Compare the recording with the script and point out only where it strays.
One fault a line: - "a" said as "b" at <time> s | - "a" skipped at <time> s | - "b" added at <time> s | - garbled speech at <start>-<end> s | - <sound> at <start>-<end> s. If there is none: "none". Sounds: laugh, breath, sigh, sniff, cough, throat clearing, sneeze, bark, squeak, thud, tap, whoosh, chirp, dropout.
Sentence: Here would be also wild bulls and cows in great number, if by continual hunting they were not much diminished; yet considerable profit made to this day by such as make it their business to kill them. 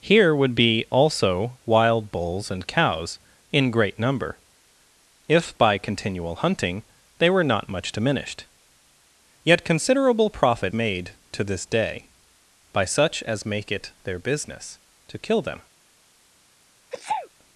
- sneeze at 16.9-17.3 s